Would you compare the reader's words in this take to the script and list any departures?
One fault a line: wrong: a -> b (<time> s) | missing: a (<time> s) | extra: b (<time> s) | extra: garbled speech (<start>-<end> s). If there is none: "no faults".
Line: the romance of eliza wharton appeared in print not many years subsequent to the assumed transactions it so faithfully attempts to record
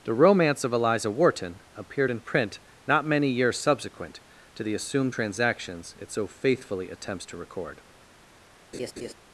no faults